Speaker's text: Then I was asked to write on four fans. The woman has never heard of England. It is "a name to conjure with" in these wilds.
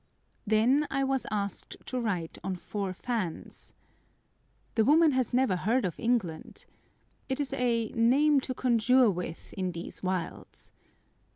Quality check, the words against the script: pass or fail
pass